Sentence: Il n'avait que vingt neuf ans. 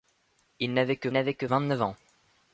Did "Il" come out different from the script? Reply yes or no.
no